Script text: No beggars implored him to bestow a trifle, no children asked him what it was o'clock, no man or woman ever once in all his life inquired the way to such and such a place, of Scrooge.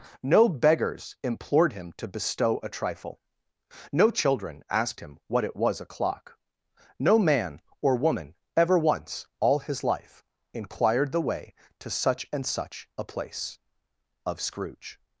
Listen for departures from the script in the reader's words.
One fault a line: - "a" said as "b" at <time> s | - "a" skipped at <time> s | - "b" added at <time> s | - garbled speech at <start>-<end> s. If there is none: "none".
- "in" skipped at 9.3 s